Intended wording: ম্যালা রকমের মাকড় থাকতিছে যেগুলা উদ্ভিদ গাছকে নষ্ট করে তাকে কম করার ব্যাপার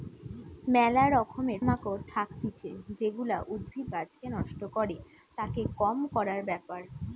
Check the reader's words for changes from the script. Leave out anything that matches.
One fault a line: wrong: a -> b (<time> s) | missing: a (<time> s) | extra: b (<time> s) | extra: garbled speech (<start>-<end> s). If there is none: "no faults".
no faults